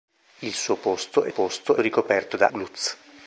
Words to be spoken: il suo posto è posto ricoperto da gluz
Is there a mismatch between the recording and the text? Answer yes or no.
no